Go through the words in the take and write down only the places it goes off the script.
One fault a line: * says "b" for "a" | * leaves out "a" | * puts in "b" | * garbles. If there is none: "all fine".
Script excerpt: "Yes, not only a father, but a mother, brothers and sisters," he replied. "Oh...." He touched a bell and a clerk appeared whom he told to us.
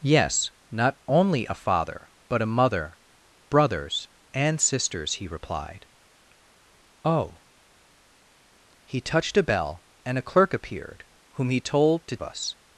all fine